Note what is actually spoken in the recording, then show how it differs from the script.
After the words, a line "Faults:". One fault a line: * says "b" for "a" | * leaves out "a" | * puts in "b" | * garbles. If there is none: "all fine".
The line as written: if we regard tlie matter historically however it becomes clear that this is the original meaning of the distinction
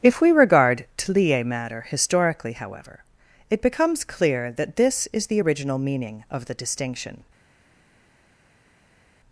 if we regard tlie matter historically however it becomes clear that this is the original meaning of the distinction
Faults:
all fine